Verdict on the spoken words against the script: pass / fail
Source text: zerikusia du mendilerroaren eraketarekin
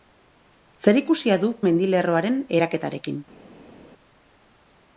pass